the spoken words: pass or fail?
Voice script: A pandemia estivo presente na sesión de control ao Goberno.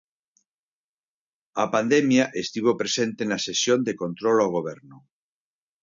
pass